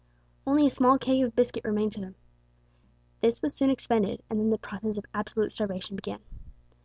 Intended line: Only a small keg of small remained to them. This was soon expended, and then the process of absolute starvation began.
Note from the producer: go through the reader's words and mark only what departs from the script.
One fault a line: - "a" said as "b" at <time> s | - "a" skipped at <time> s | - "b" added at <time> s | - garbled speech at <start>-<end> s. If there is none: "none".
- "small" said as "biscuit" at 1.4 s